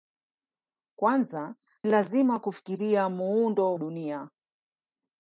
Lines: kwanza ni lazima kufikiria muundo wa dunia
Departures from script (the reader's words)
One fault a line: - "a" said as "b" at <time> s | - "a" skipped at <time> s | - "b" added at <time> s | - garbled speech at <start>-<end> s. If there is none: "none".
- "ni" skipped at 1.6 s
- "wa" skipped at 3.8 s